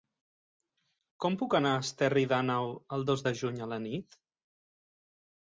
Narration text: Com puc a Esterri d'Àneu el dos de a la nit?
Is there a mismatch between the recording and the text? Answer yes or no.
yes